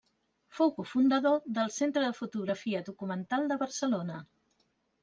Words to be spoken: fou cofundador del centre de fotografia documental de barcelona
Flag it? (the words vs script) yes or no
no